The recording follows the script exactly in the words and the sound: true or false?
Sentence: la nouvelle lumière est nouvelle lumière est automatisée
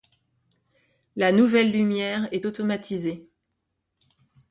false